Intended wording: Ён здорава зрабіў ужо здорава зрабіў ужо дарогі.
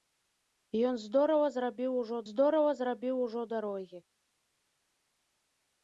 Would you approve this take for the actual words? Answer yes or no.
yes